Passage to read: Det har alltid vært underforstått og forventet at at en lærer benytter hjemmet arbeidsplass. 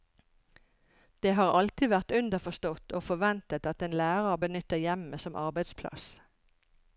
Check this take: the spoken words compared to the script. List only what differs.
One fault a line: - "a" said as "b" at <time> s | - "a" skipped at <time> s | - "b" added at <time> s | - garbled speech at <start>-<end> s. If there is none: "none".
- "at" skipped at 3.9 s
- "som" added at 5.3 s